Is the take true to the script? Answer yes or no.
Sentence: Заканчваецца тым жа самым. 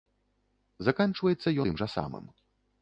yes